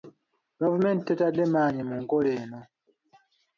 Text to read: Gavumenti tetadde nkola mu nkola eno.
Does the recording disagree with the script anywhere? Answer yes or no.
yes